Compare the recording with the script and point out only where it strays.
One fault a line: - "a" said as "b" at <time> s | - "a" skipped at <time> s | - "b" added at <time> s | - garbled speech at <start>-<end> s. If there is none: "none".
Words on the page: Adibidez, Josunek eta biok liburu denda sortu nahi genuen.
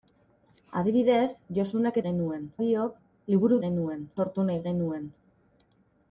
- "eta" said as "genuen" at 2.1 s
- "denda" said as "genuen" at 3.7 s